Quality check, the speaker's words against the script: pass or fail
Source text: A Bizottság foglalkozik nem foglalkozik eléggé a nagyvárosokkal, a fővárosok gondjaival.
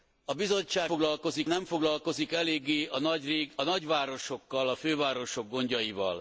pass